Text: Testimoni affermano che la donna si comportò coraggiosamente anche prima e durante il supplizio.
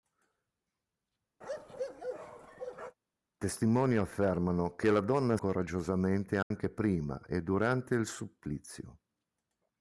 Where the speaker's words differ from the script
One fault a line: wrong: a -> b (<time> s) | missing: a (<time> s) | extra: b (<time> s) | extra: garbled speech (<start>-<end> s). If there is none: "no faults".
missing: si comportò (5.4 s)